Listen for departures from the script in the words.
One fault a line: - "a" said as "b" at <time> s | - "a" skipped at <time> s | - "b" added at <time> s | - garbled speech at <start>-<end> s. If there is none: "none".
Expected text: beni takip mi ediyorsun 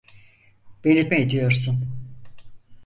- "takip" skipped at 1.1 s